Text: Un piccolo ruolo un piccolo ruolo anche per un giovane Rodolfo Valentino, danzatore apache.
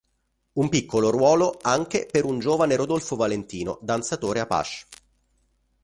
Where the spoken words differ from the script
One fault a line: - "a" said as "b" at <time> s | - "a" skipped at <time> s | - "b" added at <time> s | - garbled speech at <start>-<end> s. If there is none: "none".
- "un piccolo ruolo" skipped at 1.6 s